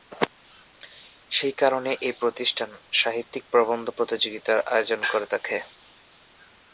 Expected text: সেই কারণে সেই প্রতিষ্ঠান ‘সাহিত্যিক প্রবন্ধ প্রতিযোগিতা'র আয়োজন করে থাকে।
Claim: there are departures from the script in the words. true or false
true